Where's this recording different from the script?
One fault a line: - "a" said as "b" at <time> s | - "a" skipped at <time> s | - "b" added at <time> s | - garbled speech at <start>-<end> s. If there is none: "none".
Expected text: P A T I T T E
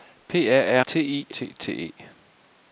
none